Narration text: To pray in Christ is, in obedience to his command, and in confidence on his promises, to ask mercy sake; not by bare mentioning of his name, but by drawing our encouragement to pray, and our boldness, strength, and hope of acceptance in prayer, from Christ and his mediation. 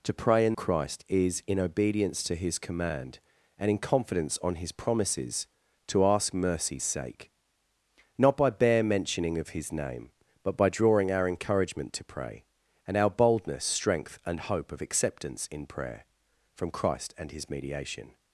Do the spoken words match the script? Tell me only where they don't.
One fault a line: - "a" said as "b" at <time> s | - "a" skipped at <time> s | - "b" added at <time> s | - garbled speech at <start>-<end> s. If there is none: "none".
none